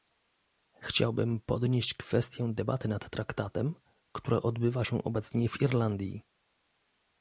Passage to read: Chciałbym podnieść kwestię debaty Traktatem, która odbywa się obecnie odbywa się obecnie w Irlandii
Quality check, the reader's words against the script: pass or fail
fail